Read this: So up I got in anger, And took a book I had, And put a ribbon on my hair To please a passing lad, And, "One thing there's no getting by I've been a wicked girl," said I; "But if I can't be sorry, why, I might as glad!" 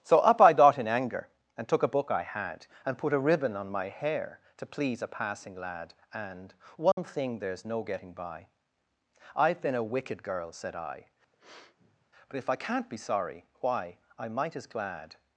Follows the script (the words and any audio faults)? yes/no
no